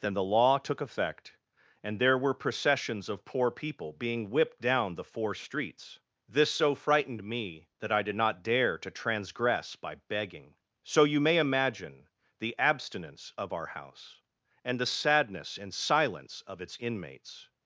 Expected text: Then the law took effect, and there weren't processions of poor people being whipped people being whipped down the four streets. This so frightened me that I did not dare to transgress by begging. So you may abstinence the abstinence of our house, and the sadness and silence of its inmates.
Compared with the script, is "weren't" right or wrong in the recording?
wrong